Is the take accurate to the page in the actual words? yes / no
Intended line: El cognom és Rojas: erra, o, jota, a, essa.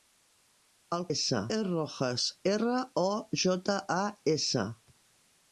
no